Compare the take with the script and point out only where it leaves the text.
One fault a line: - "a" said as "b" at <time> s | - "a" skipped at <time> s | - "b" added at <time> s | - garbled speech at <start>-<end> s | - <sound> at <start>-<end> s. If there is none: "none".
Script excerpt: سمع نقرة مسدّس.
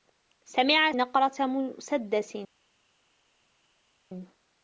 none